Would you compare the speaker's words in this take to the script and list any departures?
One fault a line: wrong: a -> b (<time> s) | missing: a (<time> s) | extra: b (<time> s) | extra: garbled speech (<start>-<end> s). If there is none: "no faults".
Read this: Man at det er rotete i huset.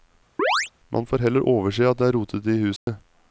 extra: får heller overse (1.1 s)